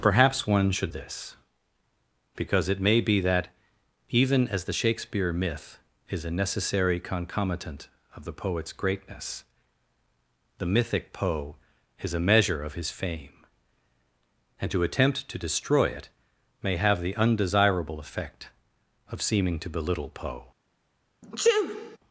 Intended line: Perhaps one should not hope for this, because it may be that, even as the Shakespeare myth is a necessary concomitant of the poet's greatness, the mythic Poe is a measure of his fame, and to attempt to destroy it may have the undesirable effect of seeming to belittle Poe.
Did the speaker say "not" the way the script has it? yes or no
no